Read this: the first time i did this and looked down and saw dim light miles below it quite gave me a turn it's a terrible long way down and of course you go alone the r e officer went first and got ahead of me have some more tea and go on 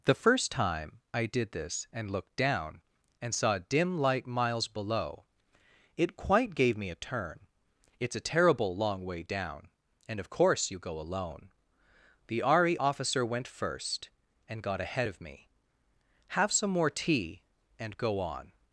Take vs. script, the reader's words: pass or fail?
pass